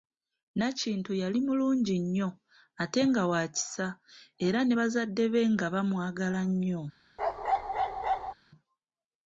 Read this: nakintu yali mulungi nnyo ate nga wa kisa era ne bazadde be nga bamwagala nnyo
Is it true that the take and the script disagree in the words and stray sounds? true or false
true